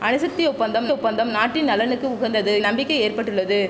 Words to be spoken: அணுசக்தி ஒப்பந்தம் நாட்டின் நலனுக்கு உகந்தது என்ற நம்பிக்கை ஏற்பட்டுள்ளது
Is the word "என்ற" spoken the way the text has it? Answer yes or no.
no